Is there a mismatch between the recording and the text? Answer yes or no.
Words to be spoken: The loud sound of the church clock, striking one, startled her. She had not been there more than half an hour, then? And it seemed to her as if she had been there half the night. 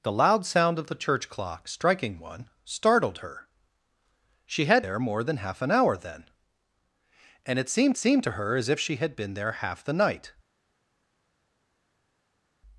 yes